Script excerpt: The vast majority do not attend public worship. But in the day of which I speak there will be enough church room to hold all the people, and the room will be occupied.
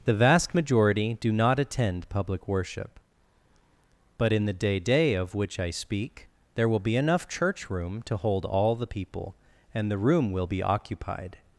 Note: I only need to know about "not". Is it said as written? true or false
true